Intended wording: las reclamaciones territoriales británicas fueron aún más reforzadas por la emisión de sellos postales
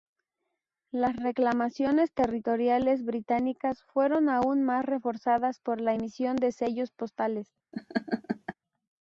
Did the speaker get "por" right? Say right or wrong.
right